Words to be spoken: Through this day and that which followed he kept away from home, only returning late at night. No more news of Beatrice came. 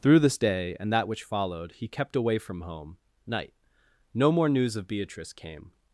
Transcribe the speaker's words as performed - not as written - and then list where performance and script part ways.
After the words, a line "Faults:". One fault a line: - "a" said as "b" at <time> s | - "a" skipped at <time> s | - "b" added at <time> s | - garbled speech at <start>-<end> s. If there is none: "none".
Through this day and that which followed he kept away from home, night. No more news of Beatrice came.
Faults:
- "only returning late at" skipped at 3.0 s